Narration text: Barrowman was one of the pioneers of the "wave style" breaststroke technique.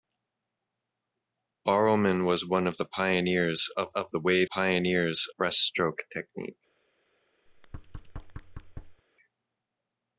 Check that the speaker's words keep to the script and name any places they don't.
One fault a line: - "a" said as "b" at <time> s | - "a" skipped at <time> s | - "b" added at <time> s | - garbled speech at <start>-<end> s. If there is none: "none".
- "of" added at 4.0 s
- "style" said as "pioneers" at 4.4 s